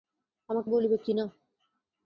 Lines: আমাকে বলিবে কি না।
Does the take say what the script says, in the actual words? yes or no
yes